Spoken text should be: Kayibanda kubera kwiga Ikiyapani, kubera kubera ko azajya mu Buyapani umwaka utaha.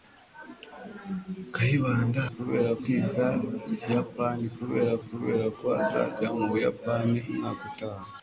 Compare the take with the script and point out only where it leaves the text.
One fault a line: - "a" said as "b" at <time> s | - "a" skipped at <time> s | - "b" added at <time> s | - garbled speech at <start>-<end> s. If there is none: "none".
none